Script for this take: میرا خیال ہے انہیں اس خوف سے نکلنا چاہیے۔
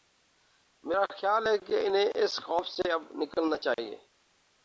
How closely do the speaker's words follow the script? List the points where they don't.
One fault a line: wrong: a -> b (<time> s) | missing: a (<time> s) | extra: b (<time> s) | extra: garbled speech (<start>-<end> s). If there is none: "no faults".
extra: کہ (1.6 s)
extra: اب (2.9 s)